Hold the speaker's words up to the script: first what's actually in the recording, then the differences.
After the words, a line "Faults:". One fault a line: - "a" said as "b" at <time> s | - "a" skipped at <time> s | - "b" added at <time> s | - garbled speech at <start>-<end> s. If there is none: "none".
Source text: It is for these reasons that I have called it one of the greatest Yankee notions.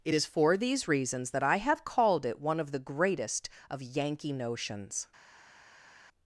It is for these reasons that I have called it one of the greatest of Yankee notions.
Faults:
- "of" added at 3.7 s